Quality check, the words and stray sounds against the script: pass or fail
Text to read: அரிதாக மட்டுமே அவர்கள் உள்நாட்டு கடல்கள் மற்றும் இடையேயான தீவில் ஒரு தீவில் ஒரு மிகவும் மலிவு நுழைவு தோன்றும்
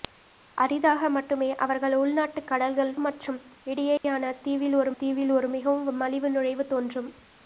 fail